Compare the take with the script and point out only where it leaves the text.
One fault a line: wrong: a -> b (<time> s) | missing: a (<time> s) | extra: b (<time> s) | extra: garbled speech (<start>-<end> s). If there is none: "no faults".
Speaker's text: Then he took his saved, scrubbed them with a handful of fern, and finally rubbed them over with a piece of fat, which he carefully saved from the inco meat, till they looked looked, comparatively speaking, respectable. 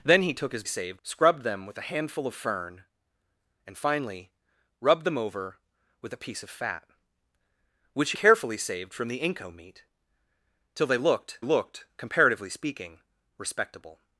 no faults